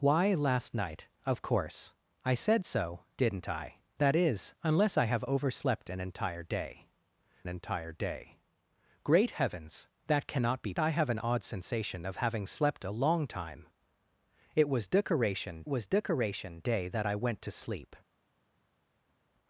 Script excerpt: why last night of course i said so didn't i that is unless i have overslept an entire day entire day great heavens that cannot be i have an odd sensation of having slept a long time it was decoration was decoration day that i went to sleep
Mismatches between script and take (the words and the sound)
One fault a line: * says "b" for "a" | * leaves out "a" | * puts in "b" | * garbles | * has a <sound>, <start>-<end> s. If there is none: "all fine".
all fine